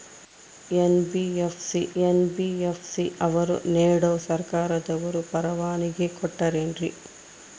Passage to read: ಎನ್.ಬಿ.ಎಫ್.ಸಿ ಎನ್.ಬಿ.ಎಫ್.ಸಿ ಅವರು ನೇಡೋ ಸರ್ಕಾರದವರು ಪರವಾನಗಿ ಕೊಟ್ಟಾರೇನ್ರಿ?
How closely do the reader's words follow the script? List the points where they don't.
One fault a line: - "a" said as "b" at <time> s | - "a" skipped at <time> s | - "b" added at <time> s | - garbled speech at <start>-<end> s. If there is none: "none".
none